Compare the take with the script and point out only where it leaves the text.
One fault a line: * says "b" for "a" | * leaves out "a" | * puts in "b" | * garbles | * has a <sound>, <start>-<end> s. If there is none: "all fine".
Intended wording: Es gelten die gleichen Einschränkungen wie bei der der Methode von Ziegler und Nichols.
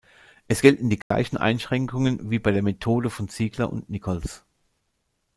* has a dropout, 1.0-1.1 s
* leaves out "der"